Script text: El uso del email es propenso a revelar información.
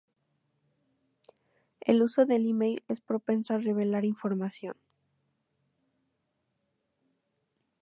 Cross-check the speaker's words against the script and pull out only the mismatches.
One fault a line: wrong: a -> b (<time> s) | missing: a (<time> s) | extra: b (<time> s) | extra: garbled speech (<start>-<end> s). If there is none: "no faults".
no faults